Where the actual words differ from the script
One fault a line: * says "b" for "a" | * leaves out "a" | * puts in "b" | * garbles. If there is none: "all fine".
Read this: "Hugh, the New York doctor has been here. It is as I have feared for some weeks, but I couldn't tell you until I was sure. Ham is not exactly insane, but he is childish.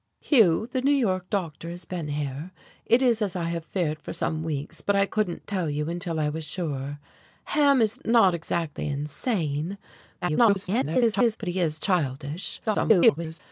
* garbles
* garbles